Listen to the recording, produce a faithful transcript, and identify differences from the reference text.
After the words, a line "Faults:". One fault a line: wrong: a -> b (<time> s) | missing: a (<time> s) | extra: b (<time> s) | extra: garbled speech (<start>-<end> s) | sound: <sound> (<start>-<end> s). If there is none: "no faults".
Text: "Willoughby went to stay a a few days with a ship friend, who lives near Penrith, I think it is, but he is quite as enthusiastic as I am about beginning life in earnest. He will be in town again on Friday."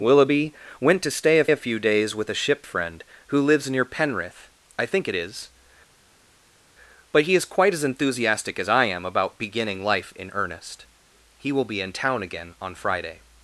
"Willoughby went to stay a a few days with a ship friend, who lives near Penrith, I think it is, but he is quite as enthusiastic as I am about beginning life in earnest. He will be in town again on Friday."
Faults:
no faults